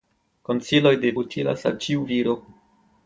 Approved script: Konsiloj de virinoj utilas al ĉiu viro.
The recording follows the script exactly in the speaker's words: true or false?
false